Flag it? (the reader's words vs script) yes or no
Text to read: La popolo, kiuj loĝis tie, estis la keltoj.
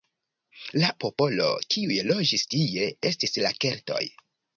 no